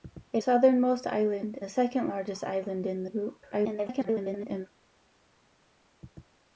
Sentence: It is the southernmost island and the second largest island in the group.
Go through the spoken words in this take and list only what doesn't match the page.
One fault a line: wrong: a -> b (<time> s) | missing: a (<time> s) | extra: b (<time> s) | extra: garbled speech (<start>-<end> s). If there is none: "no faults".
missing: is the (0.4 s)
missing: and (1.6 s)
extra: garbled speech (3.5-4.7 s)